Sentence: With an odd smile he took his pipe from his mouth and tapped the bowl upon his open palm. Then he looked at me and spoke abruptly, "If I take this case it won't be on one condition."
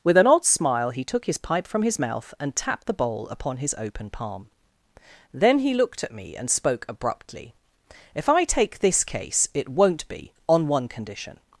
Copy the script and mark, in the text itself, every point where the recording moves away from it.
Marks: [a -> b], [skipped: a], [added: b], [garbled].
With an odd smile he took his pipe from his mouth and tapped the bowl upon his open palm. Then he looked at me and spoke abruptly, "If I take this case it won't be on one condition."